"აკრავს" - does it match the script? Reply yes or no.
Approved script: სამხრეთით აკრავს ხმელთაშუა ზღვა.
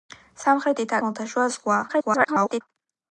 no